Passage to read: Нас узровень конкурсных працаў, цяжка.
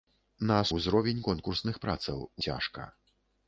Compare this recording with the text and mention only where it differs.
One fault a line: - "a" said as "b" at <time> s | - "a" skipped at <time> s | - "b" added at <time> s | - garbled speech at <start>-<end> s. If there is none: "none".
none